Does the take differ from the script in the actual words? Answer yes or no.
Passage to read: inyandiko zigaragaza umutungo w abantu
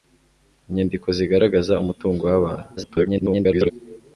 yes